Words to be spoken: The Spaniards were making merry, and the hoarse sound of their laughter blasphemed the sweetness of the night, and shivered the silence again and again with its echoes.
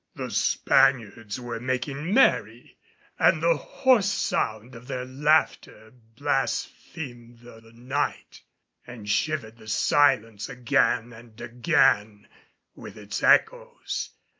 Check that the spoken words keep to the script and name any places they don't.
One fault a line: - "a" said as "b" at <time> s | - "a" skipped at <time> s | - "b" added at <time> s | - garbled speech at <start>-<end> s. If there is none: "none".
- "sweetness of" skipped at 7.6 s